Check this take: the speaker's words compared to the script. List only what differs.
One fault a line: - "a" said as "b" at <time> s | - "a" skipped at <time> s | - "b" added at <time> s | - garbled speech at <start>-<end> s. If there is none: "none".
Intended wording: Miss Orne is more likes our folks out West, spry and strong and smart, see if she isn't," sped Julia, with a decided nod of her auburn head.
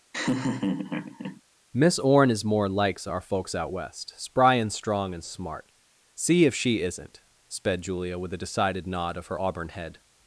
none